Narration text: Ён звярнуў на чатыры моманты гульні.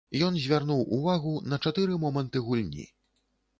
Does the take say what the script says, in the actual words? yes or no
no